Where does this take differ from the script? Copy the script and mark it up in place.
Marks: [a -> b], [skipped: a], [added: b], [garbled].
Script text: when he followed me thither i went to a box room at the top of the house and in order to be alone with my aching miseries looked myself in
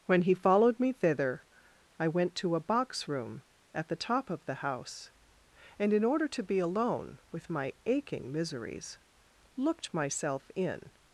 when he followed me thither i went to a box room at the top of the house and in order to be alone with my aching miseries looked myself in